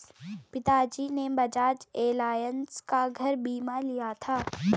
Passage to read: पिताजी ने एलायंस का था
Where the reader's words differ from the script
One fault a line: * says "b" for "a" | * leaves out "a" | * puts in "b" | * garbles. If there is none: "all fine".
* puts in "बजाज"
* puts in "घर बीमा लिया"